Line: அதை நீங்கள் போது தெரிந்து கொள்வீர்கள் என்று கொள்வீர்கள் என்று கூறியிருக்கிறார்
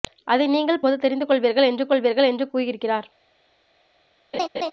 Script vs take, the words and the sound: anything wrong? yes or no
yes